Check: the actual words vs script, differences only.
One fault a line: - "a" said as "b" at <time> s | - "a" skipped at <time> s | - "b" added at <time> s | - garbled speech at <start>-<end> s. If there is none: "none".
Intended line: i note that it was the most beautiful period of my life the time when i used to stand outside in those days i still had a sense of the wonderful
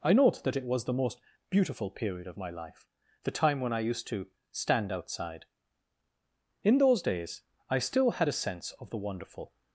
none